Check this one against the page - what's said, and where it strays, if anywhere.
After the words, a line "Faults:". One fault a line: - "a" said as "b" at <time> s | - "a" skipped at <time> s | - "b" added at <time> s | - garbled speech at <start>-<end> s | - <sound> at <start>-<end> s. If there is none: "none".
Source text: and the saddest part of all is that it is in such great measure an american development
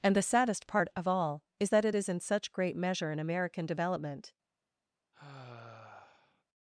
and the saddest part of all is that it is in such great measure an american development
Faults:
- sigh at 5.1-6.4 s